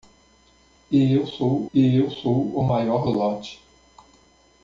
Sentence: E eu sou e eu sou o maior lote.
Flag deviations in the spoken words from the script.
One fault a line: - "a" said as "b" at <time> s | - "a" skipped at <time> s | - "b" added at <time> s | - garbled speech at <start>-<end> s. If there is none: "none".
none